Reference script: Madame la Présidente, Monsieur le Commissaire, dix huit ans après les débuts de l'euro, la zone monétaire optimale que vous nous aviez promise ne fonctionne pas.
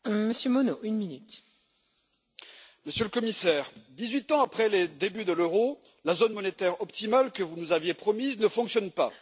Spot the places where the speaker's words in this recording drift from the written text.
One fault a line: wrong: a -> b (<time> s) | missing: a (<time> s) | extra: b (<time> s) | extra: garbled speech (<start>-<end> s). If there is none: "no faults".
no faults